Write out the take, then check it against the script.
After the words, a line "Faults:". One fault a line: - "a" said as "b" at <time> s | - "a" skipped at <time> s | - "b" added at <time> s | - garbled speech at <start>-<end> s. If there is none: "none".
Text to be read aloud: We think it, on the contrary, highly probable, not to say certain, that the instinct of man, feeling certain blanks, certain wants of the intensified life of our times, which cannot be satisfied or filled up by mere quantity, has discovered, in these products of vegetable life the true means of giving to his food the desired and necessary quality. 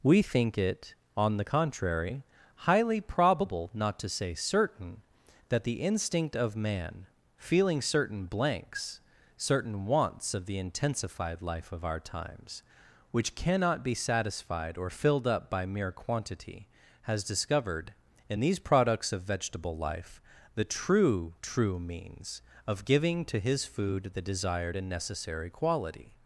We think it, on the contrary, highly probable, not to say certain, that the instinct of man, feeling certain blanks, certain wants of the intensified life of our times, which cannot be satisfied or filled up by mere quantity, has discovered, in these products of vegetable life the true true means of giving to his food the desired and necessary quality.
Faults:
- "true" added at 21.4 s